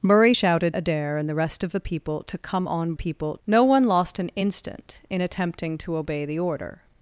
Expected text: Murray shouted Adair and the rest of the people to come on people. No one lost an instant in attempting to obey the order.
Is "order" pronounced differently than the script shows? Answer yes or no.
no